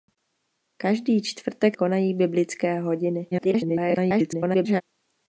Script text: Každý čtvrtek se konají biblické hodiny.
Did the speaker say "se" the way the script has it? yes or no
no